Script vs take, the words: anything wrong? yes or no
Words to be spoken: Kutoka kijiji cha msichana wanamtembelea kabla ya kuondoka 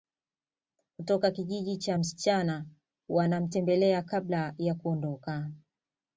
no